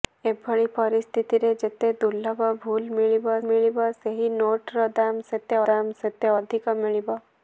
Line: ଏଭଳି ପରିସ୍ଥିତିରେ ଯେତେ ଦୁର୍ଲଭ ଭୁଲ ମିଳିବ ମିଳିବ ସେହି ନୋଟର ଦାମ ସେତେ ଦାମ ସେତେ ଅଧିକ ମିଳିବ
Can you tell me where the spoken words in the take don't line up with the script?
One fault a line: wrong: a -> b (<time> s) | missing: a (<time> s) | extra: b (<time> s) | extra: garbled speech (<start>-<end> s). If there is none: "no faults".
no faults